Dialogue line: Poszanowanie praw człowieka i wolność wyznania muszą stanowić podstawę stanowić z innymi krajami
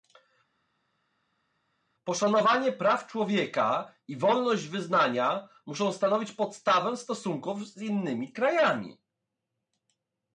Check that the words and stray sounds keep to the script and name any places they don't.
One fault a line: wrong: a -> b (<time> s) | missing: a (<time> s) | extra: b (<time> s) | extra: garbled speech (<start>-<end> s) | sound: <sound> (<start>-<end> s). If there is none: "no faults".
wrong: stanowić -> stosunków (7.0 s)